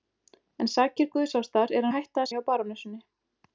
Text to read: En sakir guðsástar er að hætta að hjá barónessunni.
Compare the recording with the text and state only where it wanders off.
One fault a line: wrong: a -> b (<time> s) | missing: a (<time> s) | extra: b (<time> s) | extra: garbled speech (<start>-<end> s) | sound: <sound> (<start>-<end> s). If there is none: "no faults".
no faults